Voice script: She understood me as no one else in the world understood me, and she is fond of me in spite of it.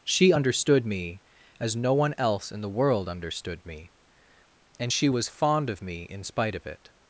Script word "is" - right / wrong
wrong